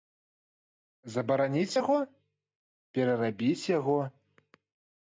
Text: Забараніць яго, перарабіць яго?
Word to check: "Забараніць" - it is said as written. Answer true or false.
true